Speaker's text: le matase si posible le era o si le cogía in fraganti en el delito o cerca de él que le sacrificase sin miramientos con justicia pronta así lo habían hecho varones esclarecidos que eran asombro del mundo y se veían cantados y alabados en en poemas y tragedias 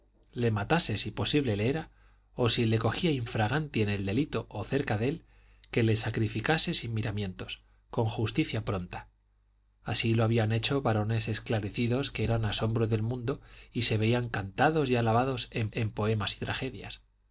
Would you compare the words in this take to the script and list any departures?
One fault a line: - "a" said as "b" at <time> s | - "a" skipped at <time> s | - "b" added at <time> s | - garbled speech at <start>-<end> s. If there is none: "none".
none